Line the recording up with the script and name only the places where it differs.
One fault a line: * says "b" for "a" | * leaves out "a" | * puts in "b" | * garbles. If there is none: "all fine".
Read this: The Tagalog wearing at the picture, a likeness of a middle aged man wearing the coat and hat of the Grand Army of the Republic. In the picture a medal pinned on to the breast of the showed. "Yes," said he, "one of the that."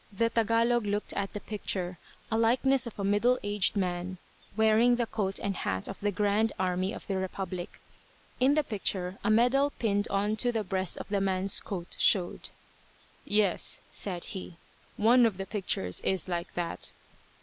* says "looked" for "wearing"
* puts in "man's coat"
* puts in "pictures is like"